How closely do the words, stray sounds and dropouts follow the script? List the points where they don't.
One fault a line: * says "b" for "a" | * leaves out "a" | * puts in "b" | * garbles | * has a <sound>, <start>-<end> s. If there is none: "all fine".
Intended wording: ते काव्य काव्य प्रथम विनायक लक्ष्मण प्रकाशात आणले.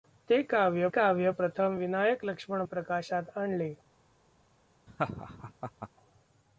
* has a laugh, 4.9-5.9 s